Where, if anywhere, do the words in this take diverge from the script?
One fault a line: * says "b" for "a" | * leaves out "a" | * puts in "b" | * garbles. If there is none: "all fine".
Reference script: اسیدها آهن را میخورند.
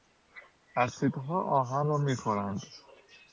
all fine